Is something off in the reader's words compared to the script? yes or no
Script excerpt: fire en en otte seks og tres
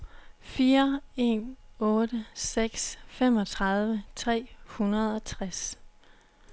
yes